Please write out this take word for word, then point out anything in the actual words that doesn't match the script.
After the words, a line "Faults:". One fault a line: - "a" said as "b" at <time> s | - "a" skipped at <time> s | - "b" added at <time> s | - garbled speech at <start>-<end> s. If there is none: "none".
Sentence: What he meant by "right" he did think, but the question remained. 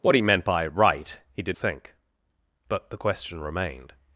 What he meant by "right" he did think, but the question remained.
Faults:
none